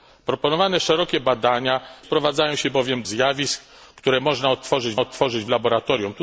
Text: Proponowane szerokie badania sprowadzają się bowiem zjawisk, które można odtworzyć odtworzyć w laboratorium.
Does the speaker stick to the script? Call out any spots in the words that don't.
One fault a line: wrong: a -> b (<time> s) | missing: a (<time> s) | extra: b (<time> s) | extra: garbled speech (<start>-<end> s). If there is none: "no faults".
no faults